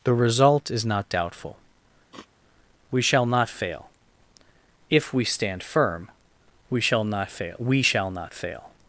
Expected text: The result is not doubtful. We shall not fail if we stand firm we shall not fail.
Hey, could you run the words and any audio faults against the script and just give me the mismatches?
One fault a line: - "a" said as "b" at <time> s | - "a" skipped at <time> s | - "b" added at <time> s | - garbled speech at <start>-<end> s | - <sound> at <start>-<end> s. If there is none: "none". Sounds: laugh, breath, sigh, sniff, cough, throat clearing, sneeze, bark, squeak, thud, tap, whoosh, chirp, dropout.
- sniff at 2.1-2.3 s
- "we shall not fail" added at 7.6 s